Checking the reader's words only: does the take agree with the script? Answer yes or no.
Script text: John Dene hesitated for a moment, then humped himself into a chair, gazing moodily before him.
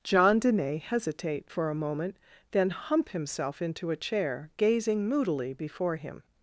no